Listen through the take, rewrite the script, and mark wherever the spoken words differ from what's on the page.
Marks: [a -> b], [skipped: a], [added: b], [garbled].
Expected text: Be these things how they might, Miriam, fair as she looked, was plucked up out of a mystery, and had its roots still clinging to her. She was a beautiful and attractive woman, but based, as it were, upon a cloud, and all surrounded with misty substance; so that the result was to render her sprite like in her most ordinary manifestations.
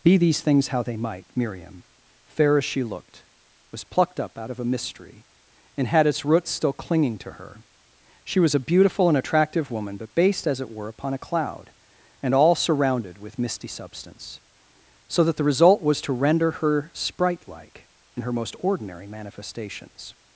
Be these things how they might, Miriam, fair as she looked, was plucked up out of a mystery, and had its roots still clinging to her. She was a beautiful and attractive woman, but based, as it were, upon a cloud, and all surrounded with misty substance; so that the result was to render her sprite like in her most ordinary manifestations.